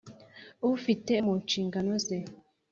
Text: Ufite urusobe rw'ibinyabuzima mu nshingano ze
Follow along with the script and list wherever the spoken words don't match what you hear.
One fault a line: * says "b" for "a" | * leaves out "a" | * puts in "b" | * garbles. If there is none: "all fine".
* leaves out "urusobe rw'ibinyabuzima"